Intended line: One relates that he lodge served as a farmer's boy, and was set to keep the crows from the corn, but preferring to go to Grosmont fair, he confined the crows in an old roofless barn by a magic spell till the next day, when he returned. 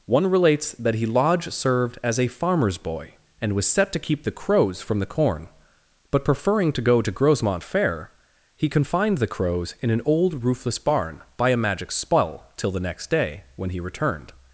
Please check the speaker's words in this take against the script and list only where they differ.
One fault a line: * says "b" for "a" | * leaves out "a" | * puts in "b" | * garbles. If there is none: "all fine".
all fine